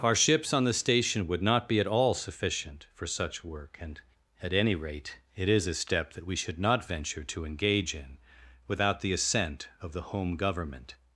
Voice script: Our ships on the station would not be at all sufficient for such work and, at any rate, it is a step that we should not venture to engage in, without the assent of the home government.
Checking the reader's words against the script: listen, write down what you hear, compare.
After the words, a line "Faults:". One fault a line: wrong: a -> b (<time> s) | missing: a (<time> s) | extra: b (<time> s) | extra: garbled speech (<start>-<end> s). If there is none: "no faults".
Our ships on the station would not be at all sufficient for such work and, at any rate, it is a step that we should not venture to engage in, without the assent of the home government.
Faults:
no faults